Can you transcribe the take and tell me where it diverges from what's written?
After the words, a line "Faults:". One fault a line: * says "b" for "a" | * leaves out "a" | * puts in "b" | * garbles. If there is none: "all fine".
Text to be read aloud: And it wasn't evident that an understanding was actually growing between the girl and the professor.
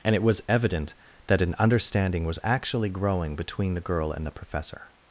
And it was evident that an understanding was actually growing between the girl and the professor.
Faults:
* says "was" for "wasn't"